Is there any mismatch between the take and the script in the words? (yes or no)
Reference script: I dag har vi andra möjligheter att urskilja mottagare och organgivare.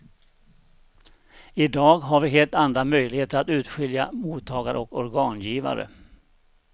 yes